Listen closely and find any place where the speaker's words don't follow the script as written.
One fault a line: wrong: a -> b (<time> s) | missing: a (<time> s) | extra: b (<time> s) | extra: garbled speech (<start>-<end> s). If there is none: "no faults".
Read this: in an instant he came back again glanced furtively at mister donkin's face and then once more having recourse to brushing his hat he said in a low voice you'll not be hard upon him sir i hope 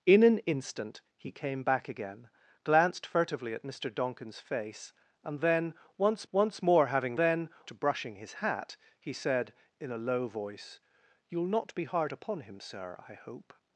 extra: once (6.3 s)
wrong: recourse -> then (7.2 s)